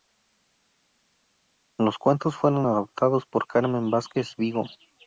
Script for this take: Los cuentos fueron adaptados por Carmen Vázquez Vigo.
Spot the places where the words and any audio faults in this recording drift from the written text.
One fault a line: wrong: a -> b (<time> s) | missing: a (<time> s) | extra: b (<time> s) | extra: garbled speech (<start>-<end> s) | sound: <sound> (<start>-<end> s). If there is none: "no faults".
no faults